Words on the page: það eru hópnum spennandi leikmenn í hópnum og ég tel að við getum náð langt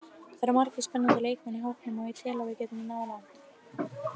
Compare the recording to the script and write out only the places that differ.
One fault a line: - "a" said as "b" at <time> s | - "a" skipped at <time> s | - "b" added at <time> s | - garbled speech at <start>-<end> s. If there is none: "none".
- "hópnum" said as "margir" at 0.6 s